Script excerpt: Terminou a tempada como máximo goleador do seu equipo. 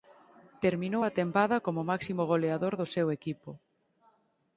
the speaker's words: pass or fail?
pass